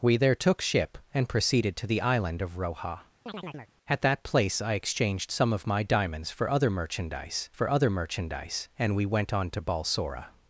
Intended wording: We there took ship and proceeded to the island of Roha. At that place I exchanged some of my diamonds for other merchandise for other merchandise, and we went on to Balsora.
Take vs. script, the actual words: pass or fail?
pass